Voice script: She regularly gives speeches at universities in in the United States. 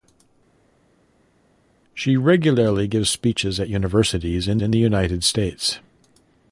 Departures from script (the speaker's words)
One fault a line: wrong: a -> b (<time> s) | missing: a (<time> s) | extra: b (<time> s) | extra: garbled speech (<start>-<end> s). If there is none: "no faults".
no faults